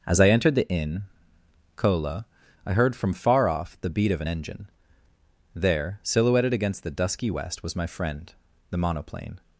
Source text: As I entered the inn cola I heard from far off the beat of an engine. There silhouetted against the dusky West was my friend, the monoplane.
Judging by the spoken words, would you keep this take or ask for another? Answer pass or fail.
pass